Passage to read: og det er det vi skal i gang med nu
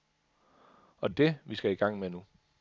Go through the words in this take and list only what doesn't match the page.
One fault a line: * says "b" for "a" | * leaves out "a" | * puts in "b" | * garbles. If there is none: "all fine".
* leaves out "det"